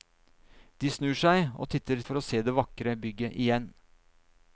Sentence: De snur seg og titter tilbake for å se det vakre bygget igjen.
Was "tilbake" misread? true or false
true